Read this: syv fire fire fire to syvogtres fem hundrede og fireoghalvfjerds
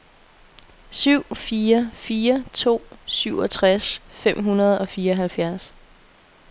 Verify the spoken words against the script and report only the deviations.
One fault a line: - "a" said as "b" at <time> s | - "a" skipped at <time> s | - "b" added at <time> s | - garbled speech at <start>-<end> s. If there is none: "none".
- "fire" skipped at 2.4 s